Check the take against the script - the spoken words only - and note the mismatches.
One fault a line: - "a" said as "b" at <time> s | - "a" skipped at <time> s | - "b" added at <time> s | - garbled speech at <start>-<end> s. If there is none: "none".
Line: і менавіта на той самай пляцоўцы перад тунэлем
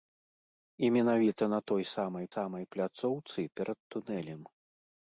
- "самай" added at 2.3 s